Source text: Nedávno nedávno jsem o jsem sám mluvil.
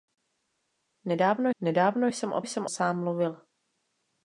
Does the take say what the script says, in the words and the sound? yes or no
yes